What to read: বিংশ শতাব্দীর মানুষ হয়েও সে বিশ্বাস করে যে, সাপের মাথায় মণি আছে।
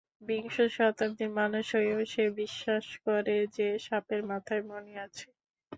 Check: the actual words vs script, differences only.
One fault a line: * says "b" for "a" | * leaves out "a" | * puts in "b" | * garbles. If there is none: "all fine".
all fine